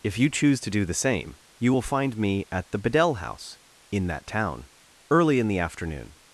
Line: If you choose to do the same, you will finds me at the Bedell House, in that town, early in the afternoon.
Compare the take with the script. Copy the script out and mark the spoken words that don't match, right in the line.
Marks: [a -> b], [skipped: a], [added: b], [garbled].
If you choose to do the same, you will [finds -> find] me at the Bedell House, in that town, early in the afternoon.